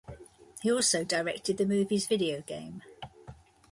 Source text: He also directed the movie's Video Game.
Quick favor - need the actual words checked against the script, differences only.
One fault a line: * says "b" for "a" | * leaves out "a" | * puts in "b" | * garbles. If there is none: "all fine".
all fine